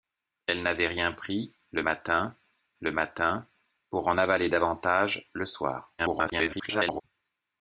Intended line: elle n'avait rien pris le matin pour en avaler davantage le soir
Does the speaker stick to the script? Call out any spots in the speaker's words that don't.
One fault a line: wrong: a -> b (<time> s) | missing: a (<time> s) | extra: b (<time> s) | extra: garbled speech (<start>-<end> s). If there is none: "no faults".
extra: le matin (2.8 s)
extra: garbled speech (6.0-7.0 s)